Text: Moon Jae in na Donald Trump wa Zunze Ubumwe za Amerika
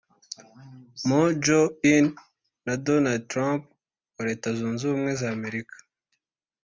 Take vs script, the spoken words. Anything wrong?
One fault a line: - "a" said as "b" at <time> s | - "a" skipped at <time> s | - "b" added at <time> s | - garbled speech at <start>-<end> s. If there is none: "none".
- "Leta" added at 4.3 s